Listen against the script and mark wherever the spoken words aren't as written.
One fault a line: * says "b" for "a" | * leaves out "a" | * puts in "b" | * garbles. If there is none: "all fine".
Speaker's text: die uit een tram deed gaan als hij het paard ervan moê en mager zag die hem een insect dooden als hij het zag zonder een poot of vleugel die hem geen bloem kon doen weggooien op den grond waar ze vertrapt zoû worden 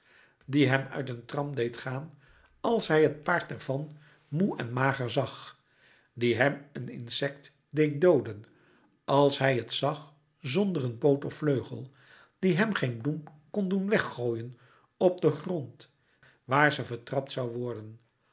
* puts in "hem"
* puts in "deed"